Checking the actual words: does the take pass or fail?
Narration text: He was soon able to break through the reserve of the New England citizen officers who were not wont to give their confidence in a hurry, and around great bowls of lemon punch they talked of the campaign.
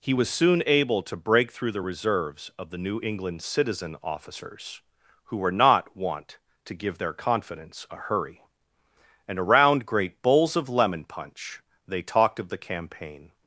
fail